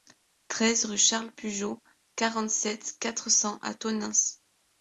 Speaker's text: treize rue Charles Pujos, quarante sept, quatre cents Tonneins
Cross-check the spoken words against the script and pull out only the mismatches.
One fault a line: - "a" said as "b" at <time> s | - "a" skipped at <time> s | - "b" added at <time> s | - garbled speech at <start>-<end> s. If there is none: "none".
- "à" added at 3.6 s